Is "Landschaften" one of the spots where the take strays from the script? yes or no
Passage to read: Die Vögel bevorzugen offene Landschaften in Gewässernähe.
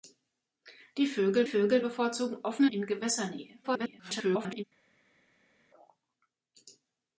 yes